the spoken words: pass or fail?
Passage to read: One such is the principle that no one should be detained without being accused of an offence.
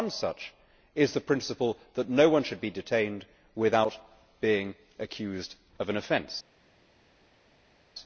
pass